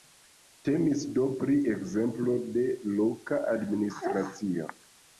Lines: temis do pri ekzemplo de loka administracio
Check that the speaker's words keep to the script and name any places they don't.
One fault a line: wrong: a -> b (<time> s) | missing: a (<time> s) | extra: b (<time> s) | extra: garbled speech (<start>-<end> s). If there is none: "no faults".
no faults